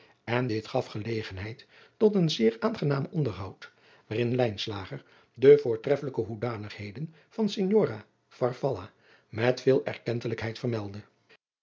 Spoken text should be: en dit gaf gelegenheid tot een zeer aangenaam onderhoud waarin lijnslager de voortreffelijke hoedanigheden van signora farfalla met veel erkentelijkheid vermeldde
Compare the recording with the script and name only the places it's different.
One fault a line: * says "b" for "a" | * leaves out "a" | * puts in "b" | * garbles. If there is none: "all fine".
all fine